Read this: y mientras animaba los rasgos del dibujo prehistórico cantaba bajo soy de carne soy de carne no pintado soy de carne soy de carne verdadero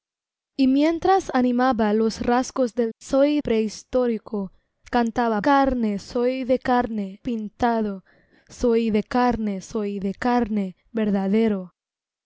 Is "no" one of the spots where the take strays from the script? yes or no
yes